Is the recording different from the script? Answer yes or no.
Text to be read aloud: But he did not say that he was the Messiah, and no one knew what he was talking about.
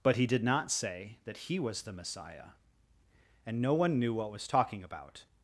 yes